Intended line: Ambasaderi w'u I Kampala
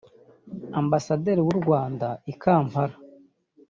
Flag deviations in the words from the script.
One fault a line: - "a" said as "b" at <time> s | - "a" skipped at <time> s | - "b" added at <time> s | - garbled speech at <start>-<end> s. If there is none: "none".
- "Rwanda" added at 1.6 s